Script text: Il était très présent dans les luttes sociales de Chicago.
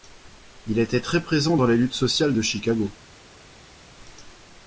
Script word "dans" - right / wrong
right